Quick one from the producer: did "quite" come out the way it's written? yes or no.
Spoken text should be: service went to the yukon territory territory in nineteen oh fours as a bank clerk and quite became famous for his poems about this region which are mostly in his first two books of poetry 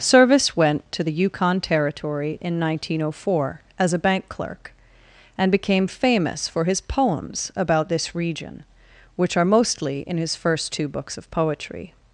no